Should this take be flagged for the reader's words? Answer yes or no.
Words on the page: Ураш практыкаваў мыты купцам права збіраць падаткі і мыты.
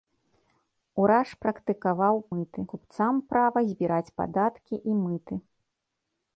no